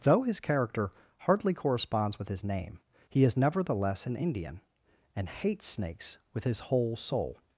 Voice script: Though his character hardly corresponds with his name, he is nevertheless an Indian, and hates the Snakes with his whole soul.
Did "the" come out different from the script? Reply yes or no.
yes